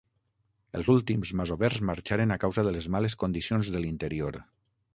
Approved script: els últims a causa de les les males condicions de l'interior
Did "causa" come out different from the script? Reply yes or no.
no